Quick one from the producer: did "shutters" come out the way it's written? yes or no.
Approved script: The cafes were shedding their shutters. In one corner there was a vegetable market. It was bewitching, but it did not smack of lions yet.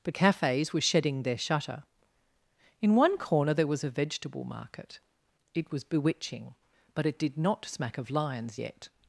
no